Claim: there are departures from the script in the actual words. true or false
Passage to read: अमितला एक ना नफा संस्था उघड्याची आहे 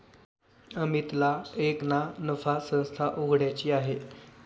false